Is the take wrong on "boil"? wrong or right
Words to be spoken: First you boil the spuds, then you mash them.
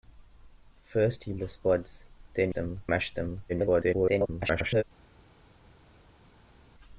wrong